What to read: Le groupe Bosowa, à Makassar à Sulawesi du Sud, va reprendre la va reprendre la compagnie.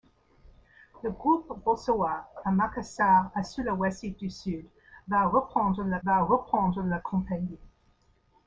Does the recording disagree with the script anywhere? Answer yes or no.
no